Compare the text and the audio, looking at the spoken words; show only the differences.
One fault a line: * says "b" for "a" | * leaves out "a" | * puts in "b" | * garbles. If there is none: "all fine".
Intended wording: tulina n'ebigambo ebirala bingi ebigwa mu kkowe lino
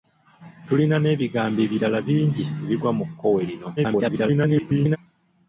* garbles